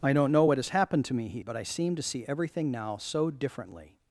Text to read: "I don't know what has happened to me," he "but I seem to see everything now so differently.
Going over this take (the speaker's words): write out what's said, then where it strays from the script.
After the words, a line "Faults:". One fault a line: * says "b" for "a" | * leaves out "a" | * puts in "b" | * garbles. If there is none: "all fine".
"I don't know what has happened to me," he "but I seem to see everything now so differently.
Faults:
all fine